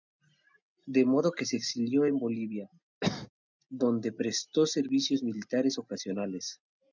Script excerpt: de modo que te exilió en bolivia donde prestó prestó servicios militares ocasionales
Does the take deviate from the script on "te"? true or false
true